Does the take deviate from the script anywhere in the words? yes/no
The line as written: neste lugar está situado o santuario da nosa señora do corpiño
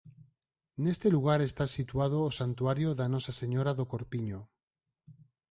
no